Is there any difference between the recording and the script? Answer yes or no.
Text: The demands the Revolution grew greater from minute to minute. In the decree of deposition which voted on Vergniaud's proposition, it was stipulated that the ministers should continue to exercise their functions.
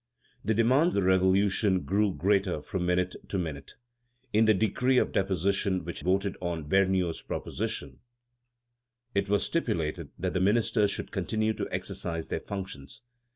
no